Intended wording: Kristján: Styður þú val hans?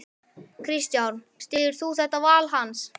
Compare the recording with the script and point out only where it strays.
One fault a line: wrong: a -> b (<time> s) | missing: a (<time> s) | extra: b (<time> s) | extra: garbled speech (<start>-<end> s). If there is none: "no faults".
extra: þetta (2.0 s)